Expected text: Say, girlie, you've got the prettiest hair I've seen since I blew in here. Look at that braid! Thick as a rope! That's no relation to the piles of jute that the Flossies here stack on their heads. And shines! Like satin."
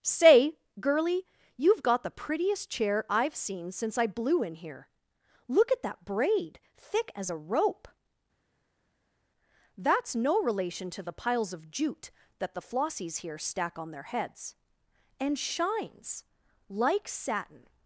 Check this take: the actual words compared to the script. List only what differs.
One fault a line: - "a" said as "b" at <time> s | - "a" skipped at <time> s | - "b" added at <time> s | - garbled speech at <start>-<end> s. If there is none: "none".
- "hair" said as "chair" at 2.7 s